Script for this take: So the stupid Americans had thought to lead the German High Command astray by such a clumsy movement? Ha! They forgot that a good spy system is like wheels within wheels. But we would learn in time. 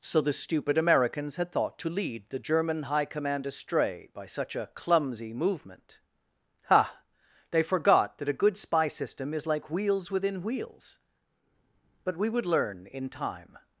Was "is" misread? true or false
false